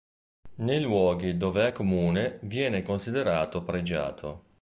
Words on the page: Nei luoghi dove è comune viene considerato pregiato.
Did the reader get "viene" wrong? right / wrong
right